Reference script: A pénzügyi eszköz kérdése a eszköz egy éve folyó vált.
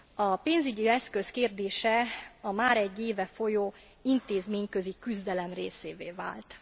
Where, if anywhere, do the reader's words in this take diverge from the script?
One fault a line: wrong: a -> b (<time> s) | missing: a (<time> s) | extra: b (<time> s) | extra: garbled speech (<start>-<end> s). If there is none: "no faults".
wrong: eszköz -> már (2.5 s)
extra: intézményközi küzdelem részévé (4.0 s)